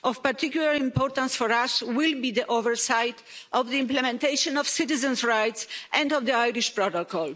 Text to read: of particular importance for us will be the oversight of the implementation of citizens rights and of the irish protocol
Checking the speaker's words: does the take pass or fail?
pass